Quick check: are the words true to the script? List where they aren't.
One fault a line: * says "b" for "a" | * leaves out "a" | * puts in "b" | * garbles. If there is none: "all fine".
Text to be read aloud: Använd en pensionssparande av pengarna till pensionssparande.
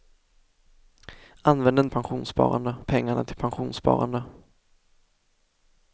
all fine